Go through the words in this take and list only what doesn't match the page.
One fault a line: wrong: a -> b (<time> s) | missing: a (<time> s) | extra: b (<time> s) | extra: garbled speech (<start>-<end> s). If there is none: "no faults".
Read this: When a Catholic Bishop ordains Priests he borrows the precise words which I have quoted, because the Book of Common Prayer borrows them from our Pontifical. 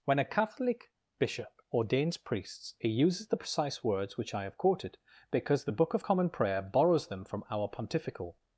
wrong: borrows -> uses (2.9 s)